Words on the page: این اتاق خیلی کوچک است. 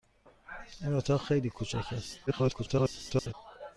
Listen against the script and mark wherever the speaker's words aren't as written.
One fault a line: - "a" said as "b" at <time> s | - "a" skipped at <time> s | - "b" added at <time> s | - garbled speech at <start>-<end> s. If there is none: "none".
- garbled speech at 2.3-3.3 s